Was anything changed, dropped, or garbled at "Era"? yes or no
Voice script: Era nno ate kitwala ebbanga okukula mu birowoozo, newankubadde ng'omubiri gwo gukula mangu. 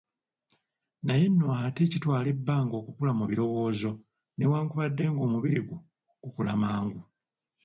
yes